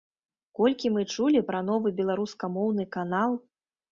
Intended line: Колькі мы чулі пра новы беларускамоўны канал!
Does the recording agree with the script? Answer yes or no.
yes